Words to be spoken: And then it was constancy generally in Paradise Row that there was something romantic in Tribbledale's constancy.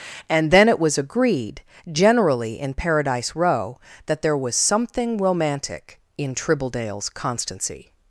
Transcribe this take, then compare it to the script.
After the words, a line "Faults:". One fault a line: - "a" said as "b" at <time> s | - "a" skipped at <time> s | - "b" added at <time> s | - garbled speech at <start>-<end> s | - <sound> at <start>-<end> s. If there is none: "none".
And then it was agreed generally in Paradise Row that there was something romantic in Tribbledale's constancy.
Faults:
- "constancy" said as "agreed" at 1.0 s